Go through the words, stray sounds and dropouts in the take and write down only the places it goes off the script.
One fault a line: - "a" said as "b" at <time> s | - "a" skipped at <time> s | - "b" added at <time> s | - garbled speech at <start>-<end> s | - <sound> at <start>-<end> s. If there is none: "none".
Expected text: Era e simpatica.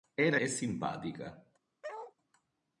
- bark at 1.8-2.1 s